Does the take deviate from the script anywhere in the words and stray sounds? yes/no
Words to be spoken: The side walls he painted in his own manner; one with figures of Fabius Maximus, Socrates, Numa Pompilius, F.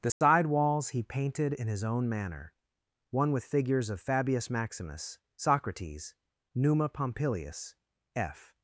yes